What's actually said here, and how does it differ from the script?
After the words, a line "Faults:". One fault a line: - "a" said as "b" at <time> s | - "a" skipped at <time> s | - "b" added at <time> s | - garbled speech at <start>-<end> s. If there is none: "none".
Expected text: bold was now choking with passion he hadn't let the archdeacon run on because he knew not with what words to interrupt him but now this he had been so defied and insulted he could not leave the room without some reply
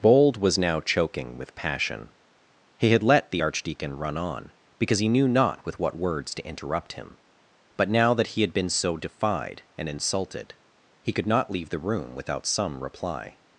bold was now choking with passion he had let the archdeacon run on because he knew not with what words to interrupt him but now that he had been so defied and insulted he could not leave the room without some reply
Faults:
- "hadn't" said as "had" at 2.9 s
- "this" said as "that" at 8.1 s